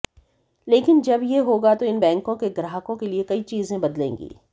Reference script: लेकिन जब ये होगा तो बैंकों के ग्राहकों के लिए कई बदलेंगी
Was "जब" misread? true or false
false